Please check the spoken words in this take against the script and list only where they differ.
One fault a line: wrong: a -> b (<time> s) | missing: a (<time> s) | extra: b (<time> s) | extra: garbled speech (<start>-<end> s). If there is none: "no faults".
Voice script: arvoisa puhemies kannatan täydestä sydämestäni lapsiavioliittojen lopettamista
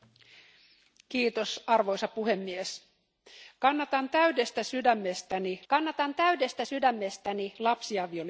extra: kannatan täydestä sydämestäni (5.7 s)